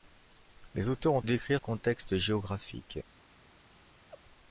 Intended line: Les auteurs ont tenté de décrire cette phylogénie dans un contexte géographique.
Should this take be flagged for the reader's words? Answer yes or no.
yes